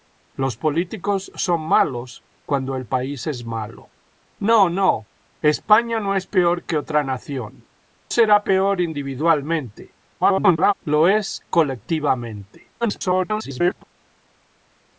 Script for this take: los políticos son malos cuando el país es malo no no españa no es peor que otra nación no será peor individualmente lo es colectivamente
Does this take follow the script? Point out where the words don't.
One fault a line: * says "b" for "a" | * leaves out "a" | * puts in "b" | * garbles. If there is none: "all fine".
* leaves out "no"
* garbles
* garbles